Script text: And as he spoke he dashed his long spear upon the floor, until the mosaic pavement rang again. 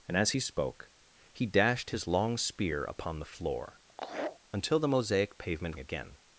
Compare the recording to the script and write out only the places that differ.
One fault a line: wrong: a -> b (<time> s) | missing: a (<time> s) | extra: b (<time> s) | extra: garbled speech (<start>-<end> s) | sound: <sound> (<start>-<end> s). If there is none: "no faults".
sound: laugh (3.9-4.4 s)
missing: rang (5.8 s)